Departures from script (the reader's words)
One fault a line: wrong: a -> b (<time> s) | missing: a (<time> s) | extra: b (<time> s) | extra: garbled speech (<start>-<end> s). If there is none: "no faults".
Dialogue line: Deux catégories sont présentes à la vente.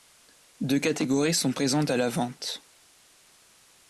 no faults